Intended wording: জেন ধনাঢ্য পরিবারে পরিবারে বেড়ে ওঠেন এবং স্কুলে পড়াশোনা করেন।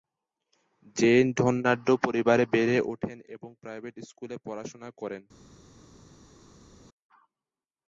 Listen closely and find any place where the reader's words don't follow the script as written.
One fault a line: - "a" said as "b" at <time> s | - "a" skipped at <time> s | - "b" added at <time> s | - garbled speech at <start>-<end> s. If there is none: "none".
- "পরিবারে" skipped at 2.4 s
- "প্রাইভেট" added at 3.6 s